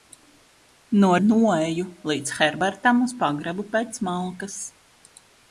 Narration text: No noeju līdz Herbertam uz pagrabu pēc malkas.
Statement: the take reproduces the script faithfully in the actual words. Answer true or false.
true